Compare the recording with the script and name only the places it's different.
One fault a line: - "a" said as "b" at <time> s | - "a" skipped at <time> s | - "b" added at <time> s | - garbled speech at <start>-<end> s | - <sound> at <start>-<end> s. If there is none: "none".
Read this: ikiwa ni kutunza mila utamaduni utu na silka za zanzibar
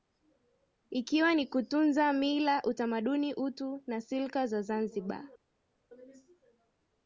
none